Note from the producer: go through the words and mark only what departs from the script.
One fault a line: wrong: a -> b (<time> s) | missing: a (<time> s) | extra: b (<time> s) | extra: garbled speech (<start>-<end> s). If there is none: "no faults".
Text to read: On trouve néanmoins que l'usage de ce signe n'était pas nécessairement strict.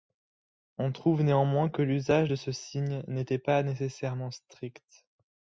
no faults